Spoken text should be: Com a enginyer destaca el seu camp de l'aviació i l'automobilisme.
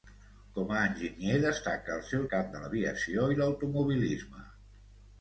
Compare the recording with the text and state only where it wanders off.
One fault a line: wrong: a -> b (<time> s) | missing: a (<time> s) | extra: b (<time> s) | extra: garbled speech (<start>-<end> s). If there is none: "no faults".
no faults